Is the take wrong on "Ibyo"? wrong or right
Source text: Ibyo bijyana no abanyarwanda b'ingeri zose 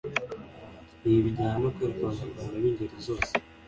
wrong